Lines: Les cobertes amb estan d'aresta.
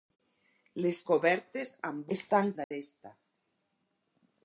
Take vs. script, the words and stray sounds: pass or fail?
fail